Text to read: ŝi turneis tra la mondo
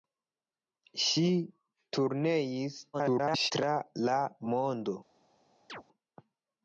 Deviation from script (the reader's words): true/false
true